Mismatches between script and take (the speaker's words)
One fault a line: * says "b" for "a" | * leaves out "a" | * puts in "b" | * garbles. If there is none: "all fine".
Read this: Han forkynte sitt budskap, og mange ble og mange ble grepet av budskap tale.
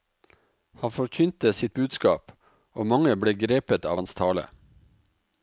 * leaves out "og mange ble"
* says "hans" for "budskap"